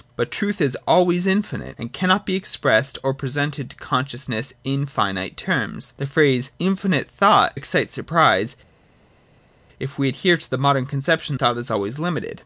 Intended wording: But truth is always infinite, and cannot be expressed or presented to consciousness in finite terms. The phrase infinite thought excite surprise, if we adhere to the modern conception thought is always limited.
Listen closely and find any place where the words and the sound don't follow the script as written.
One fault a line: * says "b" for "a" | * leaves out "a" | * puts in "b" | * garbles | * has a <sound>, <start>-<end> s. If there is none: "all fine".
all fine